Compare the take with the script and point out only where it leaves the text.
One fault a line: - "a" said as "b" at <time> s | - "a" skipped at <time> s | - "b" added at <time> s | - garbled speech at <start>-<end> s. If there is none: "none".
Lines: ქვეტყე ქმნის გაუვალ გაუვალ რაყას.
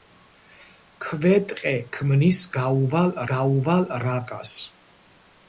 none